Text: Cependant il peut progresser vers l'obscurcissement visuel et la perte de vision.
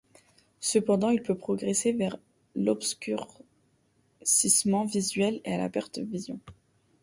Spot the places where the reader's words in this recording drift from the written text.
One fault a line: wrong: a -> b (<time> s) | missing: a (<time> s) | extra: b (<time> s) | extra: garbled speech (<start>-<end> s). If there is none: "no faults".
no faults